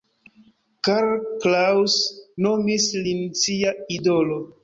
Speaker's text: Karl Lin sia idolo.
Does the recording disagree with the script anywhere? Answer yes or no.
yes